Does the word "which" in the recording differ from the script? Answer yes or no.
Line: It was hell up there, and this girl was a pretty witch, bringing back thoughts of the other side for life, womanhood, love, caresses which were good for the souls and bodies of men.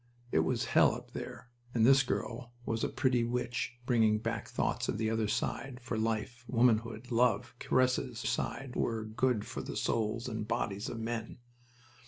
yes